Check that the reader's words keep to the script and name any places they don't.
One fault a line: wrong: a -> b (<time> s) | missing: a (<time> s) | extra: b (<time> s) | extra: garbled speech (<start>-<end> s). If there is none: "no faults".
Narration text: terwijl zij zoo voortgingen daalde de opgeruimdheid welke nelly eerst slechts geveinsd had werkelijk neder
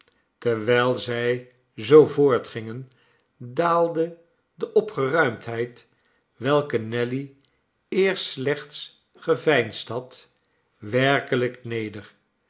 no faults